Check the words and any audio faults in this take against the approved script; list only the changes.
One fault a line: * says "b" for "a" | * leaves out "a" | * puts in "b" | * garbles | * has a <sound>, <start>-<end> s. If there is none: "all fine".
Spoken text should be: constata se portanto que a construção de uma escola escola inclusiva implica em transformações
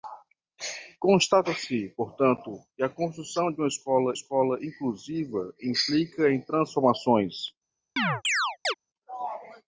* has a chirp, 8.0-8.7 s